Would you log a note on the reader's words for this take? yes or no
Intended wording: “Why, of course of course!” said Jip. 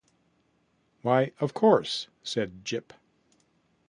yes